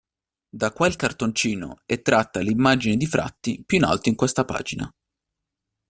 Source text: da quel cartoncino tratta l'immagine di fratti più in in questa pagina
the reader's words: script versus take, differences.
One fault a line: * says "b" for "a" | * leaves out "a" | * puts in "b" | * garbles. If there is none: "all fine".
* puts in "è"
* puts in "alto"